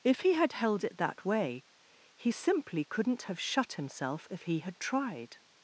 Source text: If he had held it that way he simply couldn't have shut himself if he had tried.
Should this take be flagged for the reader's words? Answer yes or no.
no